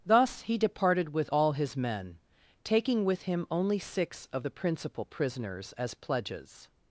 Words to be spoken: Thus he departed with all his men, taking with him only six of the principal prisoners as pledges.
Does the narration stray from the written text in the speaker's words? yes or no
no